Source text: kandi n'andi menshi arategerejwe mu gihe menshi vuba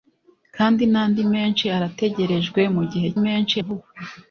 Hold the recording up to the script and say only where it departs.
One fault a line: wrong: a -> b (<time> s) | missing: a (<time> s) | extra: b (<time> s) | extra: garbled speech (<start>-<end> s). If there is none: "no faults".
no faults